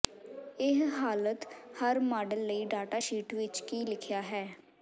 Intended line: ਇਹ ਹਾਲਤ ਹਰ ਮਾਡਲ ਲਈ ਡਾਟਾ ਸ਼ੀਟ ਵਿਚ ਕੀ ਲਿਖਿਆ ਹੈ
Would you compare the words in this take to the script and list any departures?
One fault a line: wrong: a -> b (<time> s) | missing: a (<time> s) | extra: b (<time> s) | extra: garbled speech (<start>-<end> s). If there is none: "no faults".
no faults